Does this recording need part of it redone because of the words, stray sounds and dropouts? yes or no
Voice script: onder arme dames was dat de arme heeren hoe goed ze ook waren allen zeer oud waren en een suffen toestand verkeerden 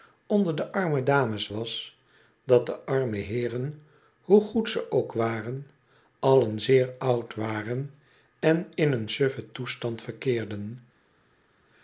yes